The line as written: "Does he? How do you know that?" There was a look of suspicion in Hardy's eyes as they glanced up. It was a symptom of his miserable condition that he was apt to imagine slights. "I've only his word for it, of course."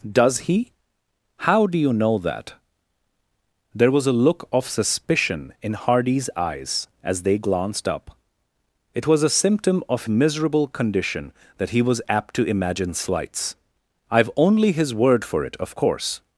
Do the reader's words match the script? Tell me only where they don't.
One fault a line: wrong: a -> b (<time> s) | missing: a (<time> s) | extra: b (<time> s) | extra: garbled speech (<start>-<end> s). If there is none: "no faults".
missing: his (10.1 s)